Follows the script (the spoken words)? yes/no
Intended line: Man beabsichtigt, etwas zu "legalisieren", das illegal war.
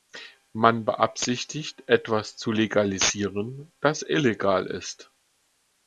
no